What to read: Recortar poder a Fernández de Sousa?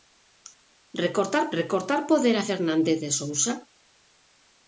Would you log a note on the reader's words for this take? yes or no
yes